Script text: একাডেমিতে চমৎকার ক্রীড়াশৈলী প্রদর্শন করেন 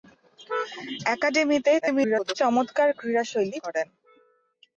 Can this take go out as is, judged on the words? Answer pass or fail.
fail